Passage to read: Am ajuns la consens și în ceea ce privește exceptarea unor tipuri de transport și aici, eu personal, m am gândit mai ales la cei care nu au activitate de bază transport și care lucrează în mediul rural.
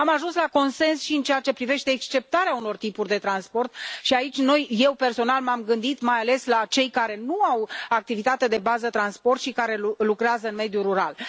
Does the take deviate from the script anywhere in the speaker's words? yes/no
no